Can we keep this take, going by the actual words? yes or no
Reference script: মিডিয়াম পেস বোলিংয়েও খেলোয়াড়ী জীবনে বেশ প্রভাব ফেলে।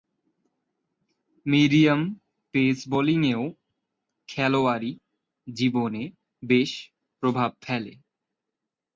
yes